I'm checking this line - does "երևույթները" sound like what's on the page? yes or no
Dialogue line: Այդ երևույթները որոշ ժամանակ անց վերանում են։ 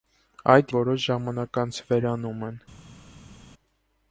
no